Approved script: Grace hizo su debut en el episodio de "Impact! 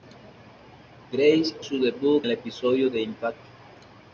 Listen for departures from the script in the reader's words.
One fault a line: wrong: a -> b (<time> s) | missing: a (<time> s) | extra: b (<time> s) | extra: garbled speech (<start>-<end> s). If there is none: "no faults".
missing: hizo (1.6 s)
missing: en (2.2 s)